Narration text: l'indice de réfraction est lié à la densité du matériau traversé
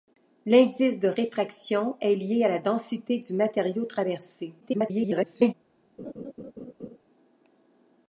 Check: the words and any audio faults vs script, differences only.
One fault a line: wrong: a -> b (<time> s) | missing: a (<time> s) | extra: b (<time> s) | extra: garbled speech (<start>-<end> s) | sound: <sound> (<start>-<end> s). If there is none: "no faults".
extra: garbled speech (4.6-5.5 s)
sound: laugh (6.0-7.0 s)